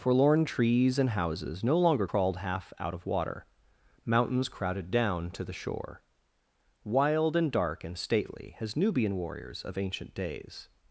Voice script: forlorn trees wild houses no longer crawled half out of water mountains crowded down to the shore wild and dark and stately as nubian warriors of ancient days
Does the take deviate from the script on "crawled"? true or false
false